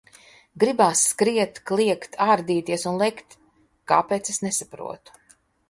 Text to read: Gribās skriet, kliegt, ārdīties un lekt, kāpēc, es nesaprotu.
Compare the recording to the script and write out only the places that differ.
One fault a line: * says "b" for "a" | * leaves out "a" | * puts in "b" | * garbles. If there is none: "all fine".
all fine